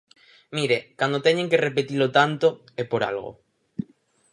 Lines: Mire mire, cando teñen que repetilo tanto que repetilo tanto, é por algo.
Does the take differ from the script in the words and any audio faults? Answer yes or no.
yes